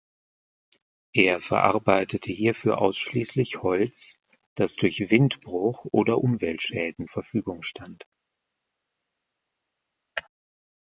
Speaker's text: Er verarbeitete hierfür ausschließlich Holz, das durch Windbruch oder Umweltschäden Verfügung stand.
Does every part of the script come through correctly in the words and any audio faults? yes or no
yes